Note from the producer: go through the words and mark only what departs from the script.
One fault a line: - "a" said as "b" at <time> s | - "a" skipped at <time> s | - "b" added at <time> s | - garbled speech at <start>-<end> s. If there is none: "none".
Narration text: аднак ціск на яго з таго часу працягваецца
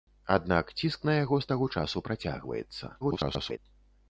- garbled speech at 3.0-3.6 s